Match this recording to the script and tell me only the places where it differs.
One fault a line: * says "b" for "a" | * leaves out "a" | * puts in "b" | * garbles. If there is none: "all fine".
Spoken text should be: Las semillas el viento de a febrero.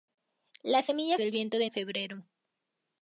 all fine